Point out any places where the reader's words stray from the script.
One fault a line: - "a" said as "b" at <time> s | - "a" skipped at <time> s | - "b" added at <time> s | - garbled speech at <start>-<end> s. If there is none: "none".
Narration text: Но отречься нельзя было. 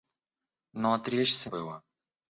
- "нельзя" skipped at 1.5 s